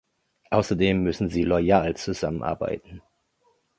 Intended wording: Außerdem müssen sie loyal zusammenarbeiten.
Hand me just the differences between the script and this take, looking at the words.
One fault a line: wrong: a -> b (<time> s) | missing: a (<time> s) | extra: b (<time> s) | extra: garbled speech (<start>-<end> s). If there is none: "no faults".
no faults